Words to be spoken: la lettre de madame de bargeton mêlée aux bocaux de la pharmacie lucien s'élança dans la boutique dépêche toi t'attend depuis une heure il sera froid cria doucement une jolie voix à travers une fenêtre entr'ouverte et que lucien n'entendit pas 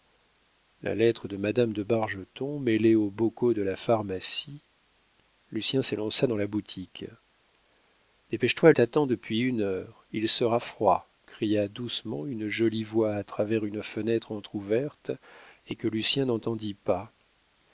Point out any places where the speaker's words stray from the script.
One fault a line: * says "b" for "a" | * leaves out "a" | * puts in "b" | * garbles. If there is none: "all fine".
all fine